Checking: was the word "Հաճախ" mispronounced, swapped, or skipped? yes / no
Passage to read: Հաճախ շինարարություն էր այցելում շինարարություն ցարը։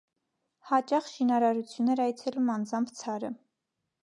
no